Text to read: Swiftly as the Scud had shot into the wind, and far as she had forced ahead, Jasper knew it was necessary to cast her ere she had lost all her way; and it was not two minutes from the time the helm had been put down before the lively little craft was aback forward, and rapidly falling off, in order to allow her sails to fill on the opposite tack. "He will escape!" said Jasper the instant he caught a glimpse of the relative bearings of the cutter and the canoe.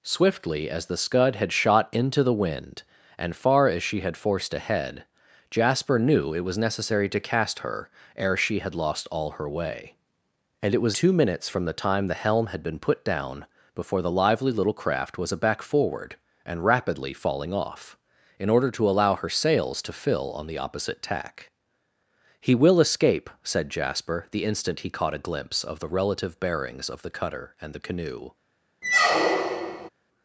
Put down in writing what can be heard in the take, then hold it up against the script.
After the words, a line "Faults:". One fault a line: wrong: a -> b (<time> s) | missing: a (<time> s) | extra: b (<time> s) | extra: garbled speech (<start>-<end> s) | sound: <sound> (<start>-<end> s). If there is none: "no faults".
Swiftly as the Scud had shot into the wind, and far as she had forced ahead, Jasper knew it was necessary to cast her ere she had lost all her way; and it was two minutes from the time the helm had been put down before the lively little craft was aback forward, and rapidly falling off, in order to allow her sails to fill on the opposite tack. "He will escape!" said Jasper the instant he caught a glimpse of the relative bearings of the cutter and the canoe.
Faults:
missing: not (11.0 s)
sound: squeak (28.8-29.9 s)